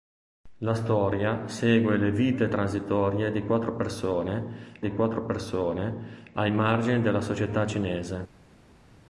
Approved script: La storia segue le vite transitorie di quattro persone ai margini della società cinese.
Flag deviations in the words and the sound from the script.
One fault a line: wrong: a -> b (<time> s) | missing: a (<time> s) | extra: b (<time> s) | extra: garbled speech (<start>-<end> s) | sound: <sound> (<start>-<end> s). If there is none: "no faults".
extra: di quattro persone (4.8 s)